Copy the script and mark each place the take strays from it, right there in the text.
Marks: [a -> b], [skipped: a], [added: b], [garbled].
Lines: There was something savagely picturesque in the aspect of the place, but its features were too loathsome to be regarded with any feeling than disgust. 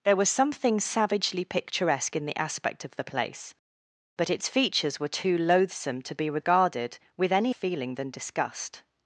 There was something savagely picturesque in the aspect of the place, but its features were too loathsome to be regarded with any feeling than disgust.